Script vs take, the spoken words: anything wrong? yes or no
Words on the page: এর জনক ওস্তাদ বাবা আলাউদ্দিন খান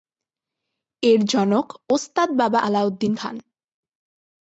no